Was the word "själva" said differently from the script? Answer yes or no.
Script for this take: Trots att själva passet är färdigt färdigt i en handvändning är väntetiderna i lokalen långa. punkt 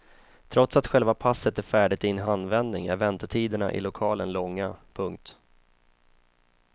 no